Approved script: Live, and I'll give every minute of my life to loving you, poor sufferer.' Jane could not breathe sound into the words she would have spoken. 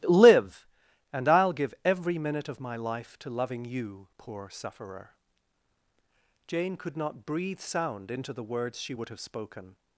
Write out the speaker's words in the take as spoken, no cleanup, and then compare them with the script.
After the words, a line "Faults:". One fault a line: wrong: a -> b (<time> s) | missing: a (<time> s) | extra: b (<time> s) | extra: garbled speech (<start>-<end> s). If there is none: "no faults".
Live, and I'll give every minute of my life to loving you, poor sufferer.' Jane could not breathe sound into the words she would have spoken.
Faults:
no faults